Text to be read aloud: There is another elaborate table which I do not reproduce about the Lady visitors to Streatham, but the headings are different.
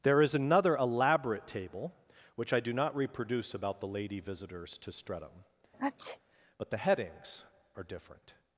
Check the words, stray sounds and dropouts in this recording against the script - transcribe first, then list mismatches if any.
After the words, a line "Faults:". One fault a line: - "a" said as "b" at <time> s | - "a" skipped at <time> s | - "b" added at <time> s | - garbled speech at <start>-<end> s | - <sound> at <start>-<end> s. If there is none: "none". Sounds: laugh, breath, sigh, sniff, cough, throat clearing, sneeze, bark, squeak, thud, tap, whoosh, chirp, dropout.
There is another elaborate table which I do not reproduce about the Lady visitors to Streatham, but the headings are different.
Faults:
- sneeze at 5.7-6.2 s